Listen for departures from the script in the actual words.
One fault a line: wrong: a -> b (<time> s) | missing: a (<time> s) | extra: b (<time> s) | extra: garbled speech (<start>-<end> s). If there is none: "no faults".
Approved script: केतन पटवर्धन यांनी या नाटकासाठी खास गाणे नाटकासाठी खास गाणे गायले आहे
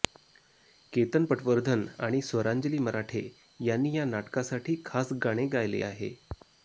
wrong: यांनी या नाटकासाठी खास गाणे -> आणि स्वरांजली मराठे यांनी या (2.0 s)